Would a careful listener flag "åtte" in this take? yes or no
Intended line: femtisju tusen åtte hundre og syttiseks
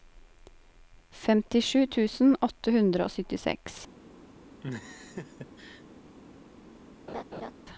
no